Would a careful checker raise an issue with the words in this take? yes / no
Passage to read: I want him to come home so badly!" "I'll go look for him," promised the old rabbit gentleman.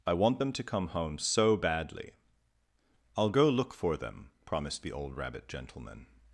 yes